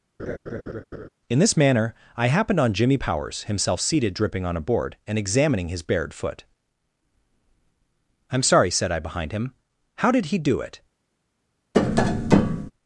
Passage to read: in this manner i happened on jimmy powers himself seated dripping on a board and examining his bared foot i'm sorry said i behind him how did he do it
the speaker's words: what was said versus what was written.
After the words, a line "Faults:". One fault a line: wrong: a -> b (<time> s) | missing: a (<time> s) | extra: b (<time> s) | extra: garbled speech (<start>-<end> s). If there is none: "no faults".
in this manner i happened on jimmy powers himself seated dripping on a board and examining his bared foot i'm sorry said i behind him how did he do it
Faults:
no faults